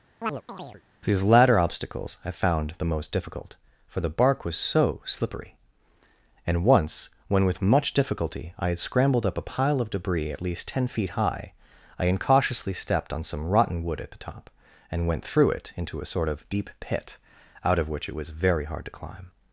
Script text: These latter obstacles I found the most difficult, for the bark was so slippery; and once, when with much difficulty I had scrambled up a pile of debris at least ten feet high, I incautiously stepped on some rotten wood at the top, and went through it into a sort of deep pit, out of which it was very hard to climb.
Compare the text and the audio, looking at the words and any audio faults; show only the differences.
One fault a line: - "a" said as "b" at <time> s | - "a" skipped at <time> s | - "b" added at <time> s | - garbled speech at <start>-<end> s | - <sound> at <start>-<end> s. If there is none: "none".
- chirp at 0.2-0.8 s